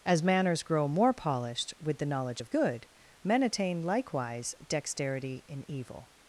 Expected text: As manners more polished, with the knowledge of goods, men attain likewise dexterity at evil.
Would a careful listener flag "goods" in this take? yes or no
yes